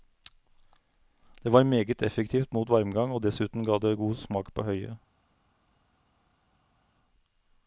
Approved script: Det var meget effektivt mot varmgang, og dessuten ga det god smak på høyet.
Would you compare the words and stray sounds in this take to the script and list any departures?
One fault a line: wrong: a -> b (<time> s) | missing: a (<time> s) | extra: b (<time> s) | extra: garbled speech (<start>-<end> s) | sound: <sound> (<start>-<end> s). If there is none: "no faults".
no faults